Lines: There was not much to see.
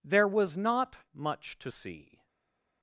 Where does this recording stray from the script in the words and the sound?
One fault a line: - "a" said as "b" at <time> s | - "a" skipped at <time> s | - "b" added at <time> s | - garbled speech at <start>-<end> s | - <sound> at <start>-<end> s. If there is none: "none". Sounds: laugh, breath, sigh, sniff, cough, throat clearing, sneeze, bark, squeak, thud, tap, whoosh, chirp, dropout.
none